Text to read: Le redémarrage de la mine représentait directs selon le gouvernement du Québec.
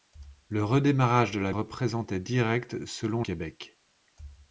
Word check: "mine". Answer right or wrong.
wrong